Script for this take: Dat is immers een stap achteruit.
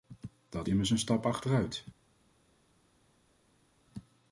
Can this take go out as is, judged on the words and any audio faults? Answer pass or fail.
fail